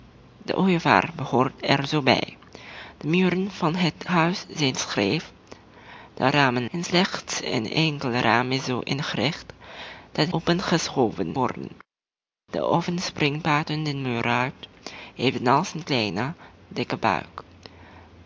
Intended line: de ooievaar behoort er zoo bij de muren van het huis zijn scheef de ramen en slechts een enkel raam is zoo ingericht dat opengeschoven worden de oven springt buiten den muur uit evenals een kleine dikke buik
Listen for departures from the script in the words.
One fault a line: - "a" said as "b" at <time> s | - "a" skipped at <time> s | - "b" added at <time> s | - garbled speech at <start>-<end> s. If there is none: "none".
none